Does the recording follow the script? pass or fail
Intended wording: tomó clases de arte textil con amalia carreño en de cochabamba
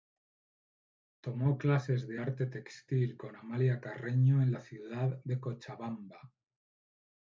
fail